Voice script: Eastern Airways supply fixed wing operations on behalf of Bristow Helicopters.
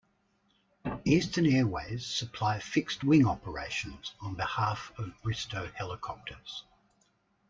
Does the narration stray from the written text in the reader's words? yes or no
no